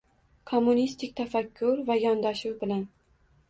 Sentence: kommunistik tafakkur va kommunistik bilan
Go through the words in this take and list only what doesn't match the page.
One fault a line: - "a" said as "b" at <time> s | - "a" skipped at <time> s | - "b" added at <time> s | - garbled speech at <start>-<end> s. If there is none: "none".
- "kommunistik" said as "yondashuv" at 2.1 s